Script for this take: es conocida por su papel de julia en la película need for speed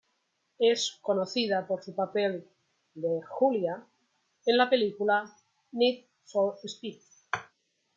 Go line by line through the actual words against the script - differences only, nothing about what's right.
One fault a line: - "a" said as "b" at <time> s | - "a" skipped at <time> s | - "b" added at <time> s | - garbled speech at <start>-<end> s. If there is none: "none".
none